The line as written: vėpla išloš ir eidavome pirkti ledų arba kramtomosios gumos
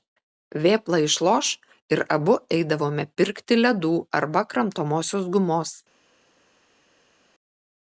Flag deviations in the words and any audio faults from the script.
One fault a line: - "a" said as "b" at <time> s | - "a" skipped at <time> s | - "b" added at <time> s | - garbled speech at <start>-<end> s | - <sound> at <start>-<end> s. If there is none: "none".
- "abu" added at 2.2 s